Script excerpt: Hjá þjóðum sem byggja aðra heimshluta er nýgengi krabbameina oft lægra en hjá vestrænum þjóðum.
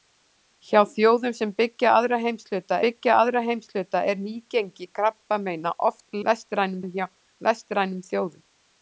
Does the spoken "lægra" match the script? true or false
false